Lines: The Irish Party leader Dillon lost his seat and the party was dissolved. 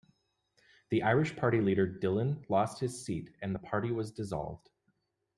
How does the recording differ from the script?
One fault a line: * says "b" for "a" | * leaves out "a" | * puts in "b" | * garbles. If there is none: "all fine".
all fine